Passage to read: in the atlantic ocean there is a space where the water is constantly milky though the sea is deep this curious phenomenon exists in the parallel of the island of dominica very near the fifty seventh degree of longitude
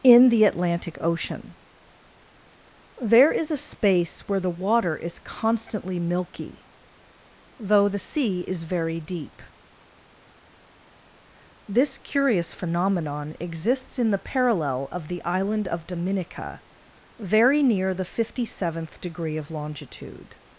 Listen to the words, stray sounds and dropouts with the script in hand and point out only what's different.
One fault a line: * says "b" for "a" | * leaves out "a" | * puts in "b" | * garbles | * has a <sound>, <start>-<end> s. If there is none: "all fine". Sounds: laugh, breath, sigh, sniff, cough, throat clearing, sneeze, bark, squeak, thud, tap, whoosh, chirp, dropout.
* puts in "very"